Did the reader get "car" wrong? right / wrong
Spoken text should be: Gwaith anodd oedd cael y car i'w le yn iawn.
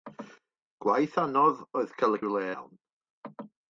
wrong